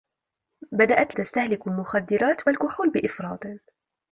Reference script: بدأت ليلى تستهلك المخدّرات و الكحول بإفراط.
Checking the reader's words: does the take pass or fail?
fail